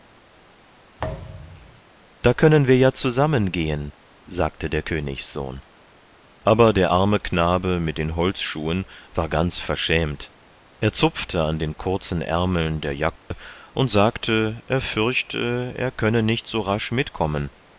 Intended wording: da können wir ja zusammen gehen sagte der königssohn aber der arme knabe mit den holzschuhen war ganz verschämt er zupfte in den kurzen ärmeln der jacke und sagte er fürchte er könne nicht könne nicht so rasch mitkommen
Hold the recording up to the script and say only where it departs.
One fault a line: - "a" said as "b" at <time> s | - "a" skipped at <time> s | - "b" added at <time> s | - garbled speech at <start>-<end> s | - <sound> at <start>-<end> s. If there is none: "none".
- thud at 1.0-1.8 s
- "in" said as "an" at 11.4 s
- dropout at 13.2-13.3 s
- "könne nicht" skipped at 16.5 s